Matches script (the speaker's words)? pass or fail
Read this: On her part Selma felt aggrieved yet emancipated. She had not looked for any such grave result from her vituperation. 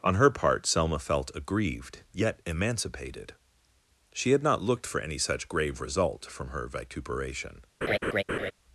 pass